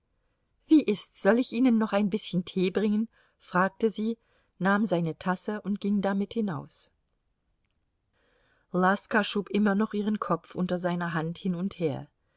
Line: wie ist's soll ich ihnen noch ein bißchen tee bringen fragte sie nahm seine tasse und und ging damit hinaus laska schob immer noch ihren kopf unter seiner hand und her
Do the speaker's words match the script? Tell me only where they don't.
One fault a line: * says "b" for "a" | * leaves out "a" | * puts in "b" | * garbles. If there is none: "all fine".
* leaves out "und"
* puts in "hin"